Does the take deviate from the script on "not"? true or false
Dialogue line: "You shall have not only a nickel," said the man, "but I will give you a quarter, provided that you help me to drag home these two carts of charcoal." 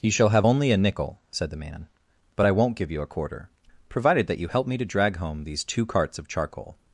true